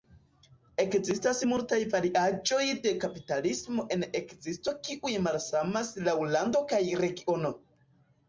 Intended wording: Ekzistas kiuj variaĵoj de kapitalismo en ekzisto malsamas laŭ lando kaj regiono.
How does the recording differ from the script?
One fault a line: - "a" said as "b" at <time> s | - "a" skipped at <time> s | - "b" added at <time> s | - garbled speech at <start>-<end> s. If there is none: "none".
- "kiuj" said as "multaj" at 1.5 s
- "kiuj" added at 4.9 s